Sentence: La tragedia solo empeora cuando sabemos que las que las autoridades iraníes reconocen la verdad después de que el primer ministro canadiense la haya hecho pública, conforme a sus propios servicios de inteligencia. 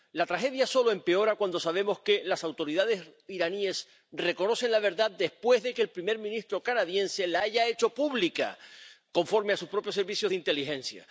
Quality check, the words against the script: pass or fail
fail